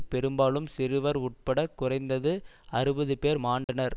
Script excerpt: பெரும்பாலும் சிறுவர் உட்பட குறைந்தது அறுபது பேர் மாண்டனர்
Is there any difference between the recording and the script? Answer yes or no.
no